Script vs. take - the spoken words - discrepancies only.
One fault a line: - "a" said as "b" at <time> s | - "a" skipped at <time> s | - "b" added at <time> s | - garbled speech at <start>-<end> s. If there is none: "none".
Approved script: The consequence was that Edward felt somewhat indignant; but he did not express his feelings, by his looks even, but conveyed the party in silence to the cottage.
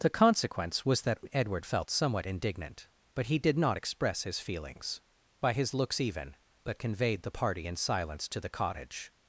none